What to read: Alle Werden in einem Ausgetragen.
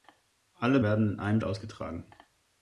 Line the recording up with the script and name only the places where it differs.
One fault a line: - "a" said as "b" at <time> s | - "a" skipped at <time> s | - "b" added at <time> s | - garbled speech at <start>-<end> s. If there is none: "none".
none